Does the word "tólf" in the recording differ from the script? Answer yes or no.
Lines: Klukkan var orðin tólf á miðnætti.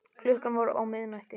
yes